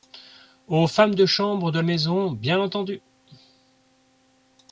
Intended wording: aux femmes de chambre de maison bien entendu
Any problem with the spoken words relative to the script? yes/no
no